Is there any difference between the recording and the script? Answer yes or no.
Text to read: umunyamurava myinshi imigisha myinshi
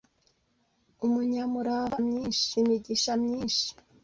no